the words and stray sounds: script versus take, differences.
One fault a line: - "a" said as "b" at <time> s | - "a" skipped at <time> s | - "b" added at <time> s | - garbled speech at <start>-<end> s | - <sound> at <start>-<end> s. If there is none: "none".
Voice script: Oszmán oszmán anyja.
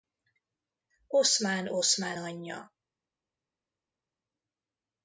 none